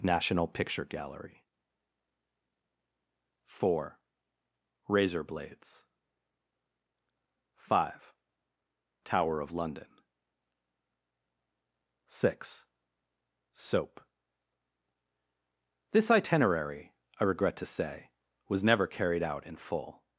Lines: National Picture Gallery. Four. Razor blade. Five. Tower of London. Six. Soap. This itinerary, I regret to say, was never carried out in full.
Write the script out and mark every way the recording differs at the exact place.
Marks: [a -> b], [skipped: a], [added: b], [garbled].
National Picture Gallery. Four. Razor [blade. -> blades] Five. Tower of London. Six. Soap. This itinerary, I regret to say, was never carried out in full.